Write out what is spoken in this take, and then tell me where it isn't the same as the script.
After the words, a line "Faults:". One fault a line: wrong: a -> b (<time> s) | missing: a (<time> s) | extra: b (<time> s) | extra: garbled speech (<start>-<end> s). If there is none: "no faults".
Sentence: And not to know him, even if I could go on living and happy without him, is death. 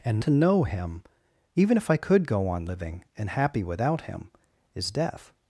And to know him, even if I could go on living and happy without him, is death.
Faults:
missing: not (0.2 s)